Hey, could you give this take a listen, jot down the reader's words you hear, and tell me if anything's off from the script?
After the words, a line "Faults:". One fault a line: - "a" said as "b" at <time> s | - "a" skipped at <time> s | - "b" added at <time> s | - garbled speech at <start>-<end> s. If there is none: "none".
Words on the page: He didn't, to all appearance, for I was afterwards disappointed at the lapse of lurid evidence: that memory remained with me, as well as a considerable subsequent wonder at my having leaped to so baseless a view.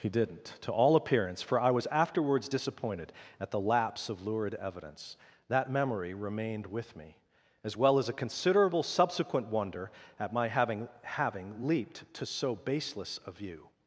He didn't, to all appearance, for I was afterwards disappointed at the lapse of lurid evidence: that memory remained with me, as well as a considerable subsequent wonder at my having having leaped to so baseless a view.
Faults:
- "having" added at 11.0 s